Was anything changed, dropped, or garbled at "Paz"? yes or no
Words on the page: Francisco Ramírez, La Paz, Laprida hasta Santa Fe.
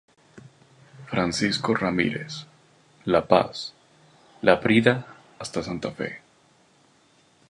no